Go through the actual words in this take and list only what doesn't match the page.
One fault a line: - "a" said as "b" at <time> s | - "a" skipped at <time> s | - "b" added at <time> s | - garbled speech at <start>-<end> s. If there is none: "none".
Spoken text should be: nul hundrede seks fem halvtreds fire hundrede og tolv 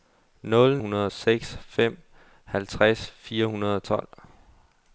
none